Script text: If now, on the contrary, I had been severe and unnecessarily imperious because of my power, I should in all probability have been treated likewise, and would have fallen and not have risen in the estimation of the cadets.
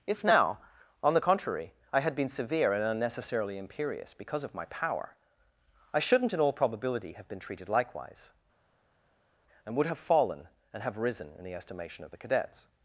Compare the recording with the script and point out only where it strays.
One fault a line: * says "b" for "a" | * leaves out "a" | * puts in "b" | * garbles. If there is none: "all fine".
* says "shouldn't" for "should"
* leaves out "not"